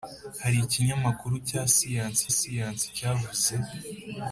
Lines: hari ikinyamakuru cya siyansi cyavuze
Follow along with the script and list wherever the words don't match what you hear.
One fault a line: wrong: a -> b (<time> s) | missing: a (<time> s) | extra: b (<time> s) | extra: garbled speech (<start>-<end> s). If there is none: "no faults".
extra: siyansi (2.4 s)